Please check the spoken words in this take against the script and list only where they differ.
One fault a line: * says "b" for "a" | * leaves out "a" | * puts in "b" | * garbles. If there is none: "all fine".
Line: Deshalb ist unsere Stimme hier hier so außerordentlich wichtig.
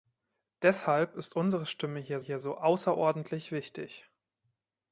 all fine